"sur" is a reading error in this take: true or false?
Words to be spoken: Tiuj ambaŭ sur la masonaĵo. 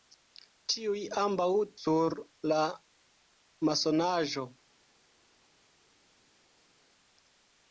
false